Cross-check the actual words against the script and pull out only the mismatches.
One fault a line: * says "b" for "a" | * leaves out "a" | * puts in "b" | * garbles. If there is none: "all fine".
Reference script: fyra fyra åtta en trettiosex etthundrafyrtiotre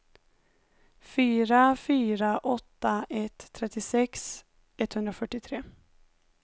* says "ett" for "en"